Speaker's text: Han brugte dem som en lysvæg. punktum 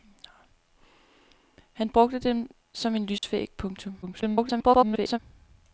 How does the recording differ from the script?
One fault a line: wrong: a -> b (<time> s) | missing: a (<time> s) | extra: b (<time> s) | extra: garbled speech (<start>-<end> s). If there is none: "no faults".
extra: garbled speech (4.0-5.2 s)